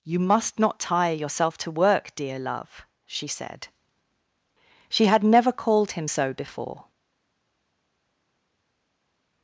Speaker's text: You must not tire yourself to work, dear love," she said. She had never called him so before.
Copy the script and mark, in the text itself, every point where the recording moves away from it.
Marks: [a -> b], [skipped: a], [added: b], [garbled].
You must not tire yourself to work, dear love," she said. She had never called him so before.